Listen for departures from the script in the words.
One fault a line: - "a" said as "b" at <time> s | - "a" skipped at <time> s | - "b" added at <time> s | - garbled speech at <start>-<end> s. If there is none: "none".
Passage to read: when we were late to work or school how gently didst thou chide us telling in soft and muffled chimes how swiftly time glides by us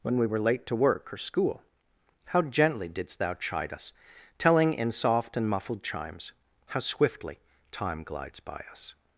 none